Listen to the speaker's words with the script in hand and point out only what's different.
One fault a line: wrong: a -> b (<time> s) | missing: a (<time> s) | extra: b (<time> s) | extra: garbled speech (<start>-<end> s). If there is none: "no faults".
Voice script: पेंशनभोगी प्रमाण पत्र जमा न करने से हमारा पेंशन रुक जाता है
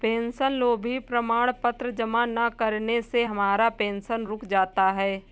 no faults